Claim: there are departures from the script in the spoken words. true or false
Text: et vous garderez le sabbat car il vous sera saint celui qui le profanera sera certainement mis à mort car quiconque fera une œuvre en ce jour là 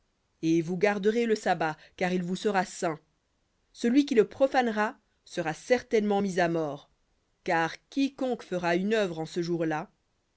false